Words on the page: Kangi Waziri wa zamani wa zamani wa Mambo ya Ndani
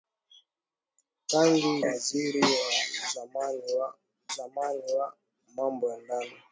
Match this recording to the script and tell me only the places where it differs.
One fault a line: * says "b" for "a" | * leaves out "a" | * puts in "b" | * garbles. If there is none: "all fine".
all fine